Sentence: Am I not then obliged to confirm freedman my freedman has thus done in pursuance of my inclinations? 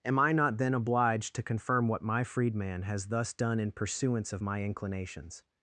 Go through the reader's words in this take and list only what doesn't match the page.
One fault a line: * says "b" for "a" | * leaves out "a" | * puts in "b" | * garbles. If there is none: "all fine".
* says "what" for "freedman"